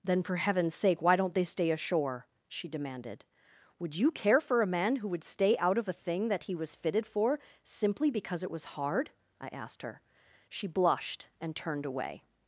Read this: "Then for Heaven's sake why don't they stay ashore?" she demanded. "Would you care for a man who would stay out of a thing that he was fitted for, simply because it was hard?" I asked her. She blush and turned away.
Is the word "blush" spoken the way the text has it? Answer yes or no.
no